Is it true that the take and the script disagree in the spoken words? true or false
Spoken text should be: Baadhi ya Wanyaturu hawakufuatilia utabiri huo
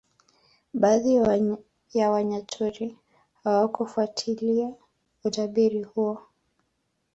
false